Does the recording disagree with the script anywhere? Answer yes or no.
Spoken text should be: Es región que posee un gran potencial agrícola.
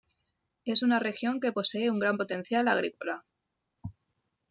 yes